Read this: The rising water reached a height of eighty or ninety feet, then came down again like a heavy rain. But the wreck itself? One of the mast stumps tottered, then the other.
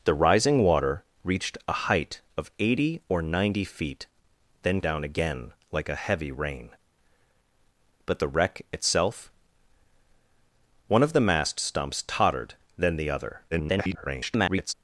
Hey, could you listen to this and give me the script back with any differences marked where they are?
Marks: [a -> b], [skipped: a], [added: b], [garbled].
The rising water reached a height of eighty or ninety feet, then [skipped: came] down again like a heavy rain. But the wreck itself? One of the mast stumps tottered, then the other. [garbled]